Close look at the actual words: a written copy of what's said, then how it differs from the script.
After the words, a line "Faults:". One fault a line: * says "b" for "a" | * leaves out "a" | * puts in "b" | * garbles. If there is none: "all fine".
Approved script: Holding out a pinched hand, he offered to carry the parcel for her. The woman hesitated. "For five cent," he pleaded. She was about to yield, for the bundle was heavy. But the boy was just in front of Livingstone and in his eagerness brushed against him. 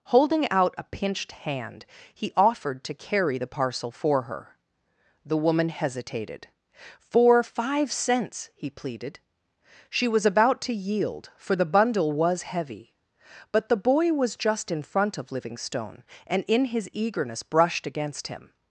Holding out a pinched hand, he offered to carry the parcel for her. The woman hesitated. "For five cents," he pleaded. She was about to yield, for the bundle was heavy. But the boy was just in front of Livingstone and in his eagerness brushed against him.
Faults:
* says "cents" for "cent"